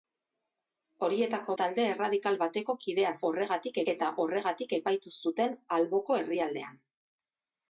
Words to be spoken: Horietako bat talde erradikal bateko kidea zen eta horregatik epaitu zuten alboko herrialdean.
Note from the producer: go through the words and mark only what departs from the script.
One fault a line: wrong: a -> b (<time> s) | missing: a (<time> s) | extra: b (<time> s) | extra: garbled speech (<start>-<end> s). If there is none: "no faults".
missing: bat (1.6 s)
wrong: zen -> horregatik (3.3 s)